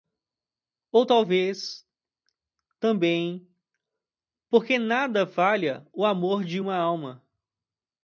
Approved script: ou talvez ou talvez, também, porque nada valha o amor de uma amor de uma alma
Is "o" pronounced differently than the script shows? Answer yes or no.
no